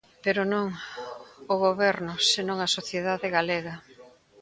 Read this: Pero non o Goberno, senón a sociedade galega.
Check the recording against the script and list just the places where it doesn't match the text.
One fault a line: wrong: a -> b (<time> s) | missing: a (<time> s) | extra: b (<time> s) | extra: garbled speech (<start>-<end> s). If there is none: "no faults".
no faults